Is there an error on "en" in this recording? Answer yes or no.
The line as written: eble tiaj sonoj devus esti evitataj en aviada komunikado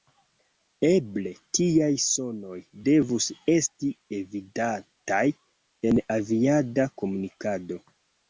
no